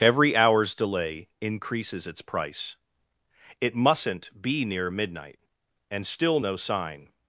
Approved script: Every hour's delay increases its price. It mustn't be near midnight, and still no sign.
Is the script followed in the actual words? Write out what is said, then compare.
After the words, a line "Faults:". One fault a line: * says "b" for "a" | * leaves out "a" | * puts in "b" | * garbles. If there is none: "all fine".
Every hour's delay increases its price. It mustn't be near midnight, and still no sign.
Faults:
all fine